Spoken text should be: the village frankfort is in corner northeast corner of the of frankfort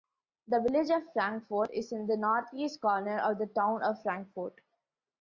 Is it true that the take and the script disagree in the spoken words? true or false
true